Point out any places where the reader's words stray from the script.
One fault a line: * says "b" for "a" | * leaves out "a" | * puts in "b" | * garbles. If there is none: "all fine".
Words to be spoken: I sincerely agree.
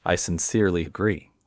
all fine